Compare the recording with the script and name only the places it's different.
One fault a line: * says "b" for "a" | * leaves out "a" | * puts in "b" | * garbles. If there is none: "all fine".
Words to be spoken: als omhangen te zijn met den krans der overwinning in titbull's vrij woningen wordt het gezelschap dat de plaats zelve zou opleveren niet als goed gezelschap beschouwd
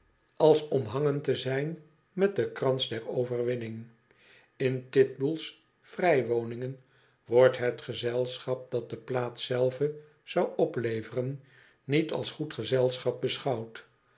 all fine